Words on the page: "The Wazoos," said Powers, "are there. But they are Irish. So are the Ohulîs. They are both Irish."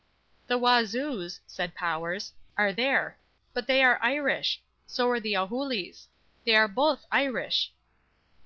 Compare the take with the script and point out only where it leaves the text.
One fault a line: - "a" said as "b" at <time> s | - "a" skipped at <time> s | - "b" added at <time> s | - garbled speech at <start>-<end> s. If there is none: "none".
none